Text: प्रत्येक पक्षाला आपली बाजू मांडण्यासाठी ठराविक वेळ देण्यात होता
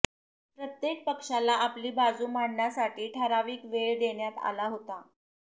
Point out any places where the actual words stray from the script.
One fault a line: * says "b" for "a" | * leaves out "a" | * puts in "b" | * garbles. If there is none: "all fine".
* puts in "आला"